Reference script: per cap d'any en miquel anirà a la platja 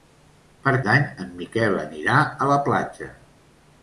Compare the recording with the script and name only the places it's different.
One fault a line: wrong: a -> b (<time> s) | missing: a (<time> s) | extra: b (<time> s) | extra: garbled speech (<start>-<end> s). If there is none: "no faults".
missing: cap (0.7 s)